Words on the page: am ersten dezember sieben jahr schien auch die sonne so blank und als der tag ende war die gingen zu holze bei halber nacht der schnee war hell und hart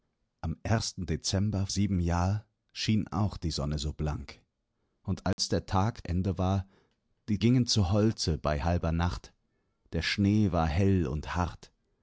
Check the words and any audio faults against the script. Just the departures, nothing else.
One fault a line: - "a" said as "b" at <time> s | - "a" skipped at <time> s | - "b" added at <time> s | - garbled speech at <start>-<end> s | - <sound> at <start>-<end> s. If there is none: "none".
- dropout at 5.3-5.4 s